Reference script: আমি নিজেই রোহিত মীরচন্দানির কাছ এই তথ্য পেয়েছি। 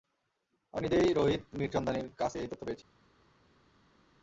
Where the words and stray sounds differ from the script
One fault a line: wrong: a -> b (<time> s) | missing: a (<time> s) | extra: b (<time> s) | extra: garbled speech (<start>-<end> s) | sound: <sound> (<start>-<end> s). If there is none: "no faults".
no faults